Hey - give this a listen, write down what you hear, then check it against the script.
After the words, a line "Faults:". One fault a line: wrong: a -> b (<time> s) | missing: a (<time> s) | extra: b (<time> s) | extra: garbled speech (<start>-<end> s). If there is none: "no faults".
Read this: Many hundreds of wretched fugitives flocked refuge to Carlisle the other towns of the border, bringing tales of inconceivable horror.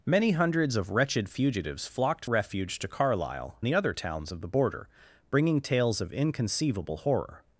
Many hundreds of wretched fugitives flocked refuge to Carlisle the other towns of the border, bringing tales of inconceivable horror.
Faults:
no faults